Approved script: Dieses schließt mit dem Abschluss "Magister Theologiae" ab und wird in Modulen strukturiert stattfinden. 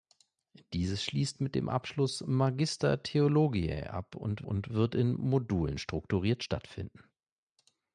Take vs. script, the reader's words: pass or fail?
fail